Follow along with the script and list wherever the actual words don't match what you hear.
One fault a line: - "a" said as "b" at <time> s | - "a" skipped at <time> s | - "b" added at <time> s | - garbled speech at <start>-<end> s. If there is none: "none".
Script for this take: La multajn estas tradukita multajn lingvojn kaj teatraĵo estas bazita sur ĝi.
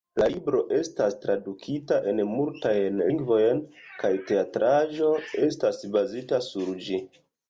- "multajn" said as "libro" at 0.3 s
- "en" added at 2.1 s